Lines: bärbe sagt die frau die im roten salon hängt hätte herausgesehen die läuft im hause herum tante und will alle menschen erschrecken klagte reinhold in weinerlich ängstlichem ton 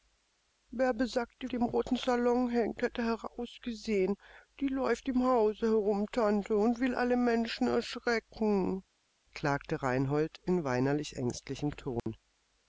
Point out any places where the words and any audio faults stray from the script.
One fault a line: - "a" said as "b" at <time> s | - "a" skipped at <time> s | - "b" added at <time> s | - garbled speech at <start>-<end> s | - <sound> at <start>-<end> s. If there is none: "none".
- "frau" skipped at 1.5 s
- dropout at 12.0-12.1 s